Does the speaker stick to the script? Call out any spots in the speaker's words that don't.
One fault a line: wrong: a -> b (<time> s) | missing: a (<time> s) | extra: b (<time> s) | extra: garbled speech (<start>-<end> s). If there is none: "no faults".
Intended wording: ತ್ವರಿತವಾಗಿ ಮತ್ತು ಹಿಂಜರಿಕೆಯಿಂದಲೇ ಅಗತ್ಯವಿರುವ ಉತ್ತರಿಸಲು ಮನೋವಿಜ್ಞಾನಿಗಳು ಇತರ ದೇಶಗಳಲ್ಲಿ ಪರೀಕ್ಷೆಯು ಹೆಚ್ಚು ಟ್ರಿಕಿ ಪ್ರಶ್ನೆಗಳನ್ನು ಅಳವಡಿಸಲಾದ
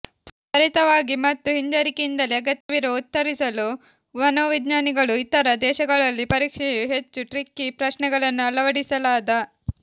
no faults